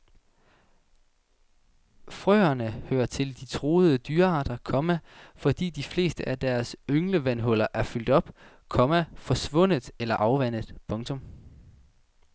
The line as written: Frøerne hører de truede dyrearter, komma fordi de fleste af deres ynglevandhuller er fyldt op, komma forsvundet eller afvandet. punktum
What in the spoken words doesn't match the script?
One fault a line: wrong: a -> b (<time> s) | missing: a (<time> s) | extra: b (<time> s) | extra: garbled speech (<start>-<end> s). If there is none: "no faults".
extra: til (3.0 s)